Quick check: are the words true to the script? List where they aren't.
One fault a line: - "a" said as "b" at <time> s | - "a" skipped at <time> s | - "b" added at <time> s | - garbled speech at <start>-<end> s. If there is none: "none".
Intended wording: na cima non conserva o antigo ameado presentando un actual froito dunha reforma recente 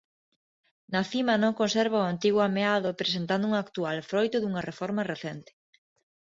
none